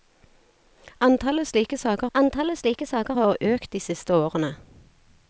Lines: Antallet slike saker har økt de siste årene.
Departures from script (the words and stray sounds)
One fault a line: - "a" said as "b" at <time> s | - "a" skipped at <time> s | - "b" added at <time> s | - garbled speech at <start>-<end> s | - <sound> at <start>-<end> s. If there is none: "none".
- "antallet slike saker" added at 2.1 s